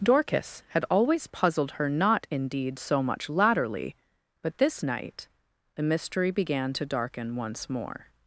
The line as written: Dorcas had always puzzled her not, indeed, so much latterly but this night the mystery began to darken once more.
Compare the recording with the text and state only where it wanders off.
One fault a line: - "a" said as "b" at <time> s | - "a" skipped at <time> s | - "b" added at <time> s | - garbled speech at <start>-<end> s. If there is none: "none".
none